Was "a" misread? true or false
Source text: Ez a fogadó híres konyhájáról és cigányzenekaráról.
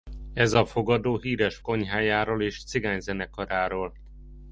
false